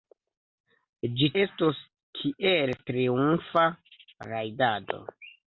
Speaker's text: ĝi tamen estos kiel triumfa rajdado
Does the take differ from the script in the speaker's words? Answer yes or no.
yes